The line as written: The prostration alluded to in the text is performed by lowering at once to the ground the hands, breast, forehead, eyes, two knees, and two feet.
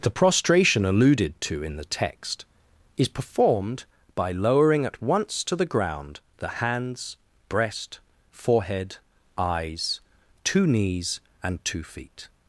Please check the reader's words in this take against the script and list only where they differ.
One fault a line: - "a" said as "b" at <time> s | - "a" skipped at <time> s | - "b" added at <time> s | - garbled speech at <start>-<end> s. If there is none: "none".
none